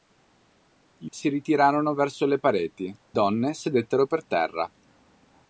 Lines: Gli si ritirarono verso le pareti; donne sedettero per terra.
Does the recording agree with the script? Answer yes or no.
yes